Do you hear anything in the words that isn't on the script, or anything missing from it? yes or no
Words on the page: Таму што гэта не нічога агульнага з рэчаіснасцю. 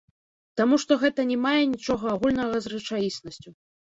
yes